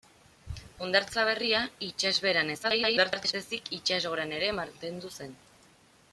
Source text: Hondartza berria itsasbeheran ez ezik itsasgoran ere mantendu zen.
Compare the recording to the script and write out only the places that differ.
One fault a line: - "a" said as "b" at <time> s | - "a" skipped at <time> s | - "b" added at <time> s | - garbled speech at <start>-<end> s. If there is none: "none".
- garbled speech at 2.6-3.3 s